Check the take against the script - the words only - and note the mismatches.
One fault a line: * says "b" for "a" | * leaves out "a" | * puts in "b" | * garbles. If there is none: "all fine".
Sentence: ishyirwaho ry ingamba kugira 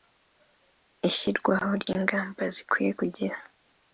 * puts in "zikwiye"